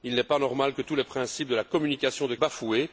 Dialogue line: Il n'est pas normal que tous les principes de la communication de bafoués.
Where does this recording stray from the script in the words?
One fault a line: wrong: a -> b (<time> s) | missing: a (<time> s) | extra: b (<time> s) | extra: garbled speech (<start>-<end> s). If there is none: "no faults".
no faults